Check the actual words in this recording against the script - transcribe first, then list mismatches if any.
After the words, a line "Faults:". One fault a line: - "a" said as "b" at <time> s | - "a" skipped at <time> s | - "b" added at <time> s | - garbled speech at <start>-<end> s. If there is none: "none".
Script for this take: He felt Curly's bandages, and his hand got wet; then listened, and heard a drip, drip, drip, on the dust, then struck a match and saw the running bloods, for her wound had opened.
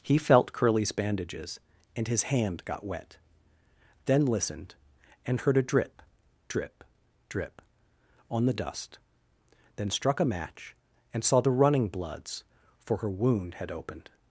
He felt Curly's bandages, and his hand got wet; then listened, and heard a drip, drip, drip, on the dust, then struck a match and saw the running bloods, for her wound had opened.
Faults:
none